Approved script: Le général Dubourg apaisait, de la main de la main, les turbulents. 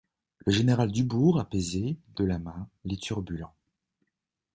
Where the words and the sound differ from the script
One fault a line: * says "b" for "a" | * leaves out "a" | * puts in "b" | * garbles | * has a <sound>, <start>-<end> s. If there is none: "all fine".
* leaves out "de la main"